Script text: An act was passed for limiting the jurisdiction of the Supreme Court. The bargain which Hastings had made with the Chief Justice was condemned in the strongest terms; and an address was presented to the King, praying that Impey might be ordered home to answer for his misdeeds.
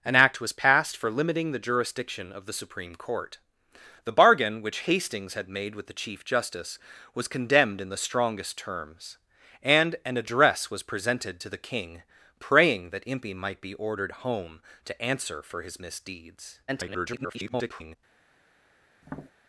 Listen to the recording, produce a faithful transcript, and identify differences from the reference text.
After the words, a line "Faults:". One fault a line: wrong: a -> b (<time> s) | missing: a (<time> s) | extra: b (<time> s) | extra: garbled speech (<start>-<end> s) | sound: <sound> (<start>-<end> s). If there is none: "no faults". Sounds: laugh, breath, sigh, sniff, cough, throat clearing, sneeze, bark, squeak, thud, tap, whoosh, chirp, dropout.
An act was passed for limiting the jurisdiction of the Supreme Court. The bargain which Hastings had made with the Chief Justice was condemned in the strongest terms; and an address was presented to the King, praying that Impey might be ordered home to answer for his misdeeds. [garbled]
Faults:
extra: garbled speech (16.7-18.0 s)
sound: tap (19.0-19.3 s)